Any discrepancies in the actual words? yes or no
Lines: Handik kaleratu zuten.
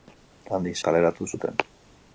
no